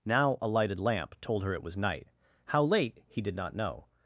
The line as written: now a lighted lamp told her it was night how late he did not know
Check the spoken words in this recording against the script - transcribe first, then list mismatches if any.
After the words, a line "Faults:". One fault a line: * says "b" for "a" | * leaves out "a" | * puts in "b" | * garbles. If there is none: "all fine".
now a lighted lamp told her it was night how late he did not know
Faults:
all fine